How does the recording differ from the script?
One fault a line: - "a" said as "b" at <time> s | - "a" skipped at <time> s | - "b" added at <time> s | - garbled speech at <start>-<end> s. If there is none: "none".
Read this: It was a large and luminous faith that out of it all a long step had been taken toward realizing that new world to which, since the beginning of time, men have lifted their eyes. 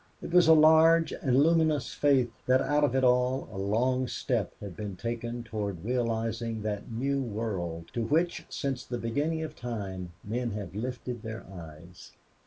none